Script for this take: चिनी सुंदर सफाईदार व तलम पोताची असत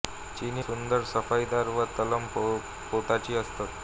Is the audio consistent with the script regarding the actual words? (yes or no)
yes